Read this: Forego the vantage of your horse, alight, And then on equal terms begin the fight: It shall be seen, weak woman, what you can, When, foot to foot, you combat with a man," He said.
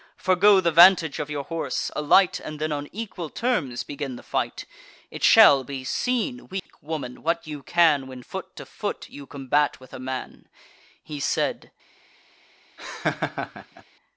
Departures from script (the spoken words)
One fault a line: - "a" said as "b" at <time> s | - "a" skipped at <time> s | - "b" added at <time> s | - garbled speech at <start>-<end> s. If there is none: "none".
none